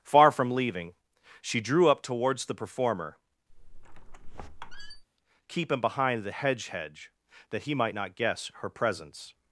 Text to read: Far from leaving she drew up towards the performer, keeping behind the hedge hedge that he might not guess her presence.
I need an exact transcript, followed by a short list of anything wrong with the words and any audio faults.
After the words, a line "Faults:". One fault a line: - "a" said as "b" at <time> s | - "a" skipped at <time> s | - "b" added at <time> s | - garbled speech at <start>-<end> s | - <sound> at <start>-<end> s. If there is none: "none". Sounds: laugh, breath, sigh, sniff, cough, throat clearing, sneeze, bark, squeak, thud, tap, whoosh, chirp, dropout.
Far from leaving she drew up towards the performer, keeping behind the hedge hedge that he might not guess her presence.
Faults:
- squeak at 3.5-5.0 s